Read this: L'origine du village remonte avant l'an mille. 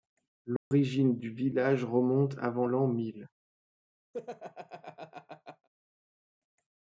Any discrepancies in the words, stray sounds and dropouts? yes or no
yes